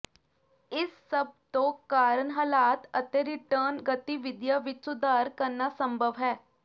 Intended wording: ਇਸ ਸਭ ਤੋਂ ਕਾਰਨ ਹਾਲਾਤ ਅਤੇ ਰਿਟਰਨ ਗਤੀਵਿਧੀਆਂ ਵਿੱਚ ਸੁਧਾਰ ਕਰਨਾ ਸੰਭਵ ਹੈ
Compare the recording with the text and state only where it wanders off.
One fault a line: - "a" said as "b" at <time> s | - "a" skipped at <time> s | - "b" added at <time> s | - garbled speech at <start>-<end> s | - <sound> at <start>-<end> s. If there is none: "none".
none